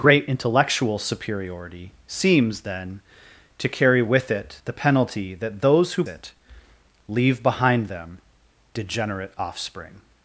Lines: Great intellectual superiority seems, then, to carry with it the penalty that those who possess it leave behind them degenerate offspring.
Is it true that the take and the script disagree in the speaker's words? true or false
true